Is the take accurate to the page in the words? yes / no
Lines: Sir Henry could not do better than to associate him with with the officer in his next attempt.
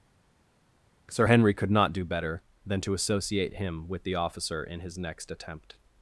no